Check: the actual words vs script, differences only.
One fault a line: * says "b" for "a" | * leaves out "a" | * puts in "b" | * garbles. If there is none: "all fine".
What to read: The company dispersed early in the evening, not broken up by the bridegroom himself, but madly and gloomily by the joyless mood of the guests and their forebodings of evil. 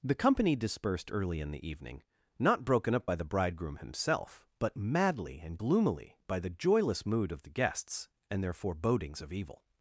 all fine